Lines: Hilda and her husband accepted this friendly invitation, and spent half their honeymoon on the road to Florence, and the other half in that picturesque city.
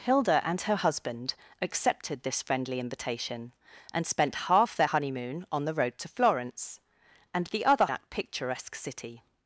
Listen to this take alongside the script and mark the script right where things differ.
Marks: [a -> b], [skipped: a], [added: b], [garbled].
Hilda and her husband accepted this friendly invitation, and spent half their honeymoon on the road to Florence, and the other [skipped: half in] that picturesque city.